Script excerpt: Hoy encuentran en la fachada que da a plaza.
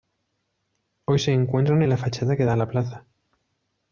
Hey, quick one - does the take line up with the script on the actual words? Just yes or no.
no